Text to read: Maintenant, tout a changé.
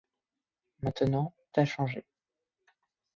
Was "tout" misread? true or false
true